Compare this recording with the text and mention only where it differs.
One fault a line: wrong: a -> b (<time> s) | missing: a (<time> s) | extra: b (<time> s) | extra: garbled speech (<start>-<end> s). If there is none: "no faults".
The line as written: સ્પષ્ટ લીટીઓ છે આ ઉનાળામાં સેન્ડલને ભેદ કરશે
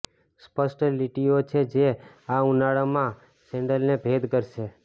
extra: જે (1.8 s)